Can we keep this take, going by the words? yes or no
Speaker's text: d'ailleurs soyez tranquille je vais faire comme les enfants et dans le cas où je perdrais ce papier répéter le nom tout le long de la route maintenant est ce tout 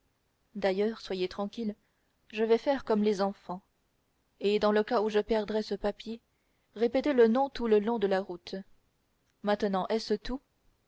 yes